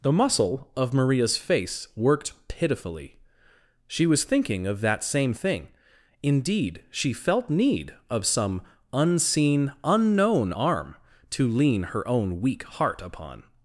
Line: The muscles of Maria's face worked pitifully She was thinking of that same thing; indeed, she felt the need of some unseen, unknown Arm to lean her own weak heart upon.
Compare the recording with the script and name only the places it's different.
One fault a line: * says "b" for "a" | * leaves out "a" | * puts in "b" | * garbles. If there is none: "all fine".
* says "muscle" for "muscles"
* leaves out "the"